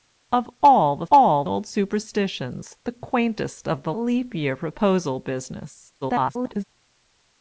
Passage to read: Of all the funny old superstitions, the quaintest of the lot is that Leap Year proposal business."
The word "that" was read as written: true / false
false